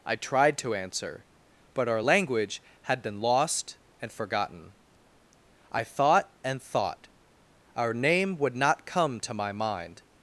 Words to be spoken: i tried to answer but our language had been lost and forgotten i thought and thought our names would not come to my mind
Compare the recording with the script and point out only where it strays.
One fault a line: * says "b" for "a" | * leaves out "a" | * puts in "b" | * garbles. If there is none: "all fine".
* says "name" for "names"